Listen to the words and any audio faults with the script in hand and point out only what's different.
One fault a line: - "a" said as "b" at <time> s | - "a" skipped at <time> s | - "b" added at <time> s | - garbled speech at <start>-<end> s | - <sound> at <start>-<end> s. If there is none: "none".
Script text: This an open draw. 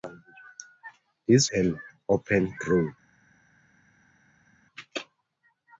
none